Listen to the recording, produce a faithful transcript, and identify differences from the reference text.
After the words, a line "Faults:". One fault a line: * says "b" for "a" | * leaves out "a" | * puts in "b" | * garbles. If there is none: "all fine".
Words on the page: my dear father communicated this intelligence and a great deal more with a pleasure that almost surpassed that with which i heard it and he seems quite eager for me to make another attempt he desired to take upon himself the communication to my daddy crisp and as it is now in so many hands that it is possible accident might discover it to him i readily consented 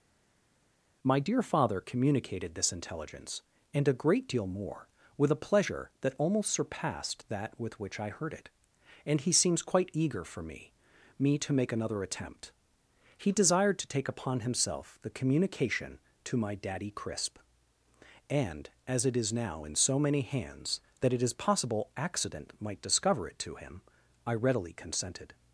my dear father communicated this intelligence and a great deal more with a pleasure that almost surpassed that with which i heard it and he seems quite eager for me me to make another attempt he desired to take upon himself the communication to my daddy crisp and as it is now in so many hands that it is possible accident might discover it to him i readily consented
Faults:
* puts in "me"